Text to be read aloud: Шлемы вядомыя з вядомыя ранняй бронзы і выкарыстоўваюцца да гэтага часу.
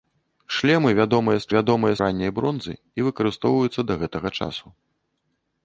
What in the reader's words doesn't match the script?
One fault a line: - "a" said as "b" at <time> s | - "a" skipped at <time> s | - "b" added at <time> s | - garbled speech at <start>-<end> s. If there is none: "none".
none